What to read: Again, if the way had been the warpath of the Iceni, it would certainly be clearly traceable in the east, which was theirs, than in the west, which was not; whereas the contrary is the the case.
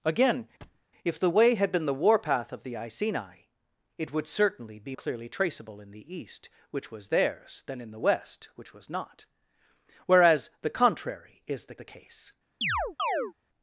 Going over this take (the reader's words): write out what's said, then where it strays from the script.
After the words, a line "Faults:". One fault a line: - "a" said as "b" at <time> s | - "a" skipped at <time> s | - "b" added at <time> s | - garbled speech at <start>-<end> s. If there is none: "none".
Again, if the way had been the warpath of the Iceni, it would certainly be clearly traceable in the east, which was theirs, than in the west, which was not; whereas the contrary is the the case.
Faults:
none